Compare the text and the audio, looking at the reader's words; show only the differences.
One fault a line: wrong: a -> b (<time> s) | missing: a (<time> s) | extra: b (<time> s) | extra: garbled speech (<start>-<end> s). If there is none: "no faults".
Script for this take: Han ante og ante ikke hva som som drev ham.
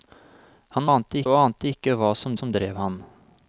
no faults